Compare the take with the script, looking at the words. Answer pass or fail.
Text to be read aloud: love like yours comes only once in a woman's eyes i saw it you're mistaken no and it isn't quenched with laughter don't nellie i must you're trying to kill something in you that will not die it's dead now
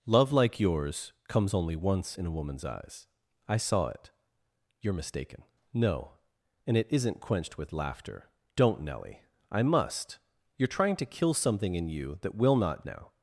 fail